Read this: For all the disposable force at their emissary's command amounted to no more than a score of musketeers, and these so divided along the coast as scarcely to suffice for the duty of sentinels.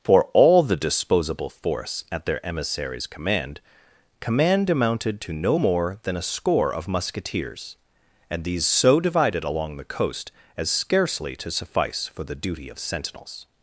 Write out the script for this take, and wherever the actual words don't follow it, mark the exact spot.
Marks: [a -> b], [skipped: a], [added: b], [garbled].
For all the disposable force at their emissary's command [added: command] amounted to no more than a score of musketeers, and these so divided along the coast as scarcely to suffice for the duty of sentinels.